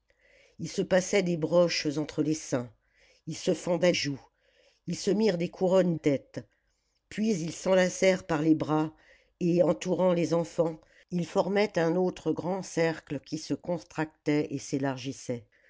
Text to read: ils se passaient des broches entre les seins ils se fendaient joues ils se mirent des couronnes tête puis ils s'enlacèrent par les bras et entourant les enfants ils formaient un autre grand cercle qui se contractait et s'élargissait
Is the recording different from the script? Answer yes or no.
no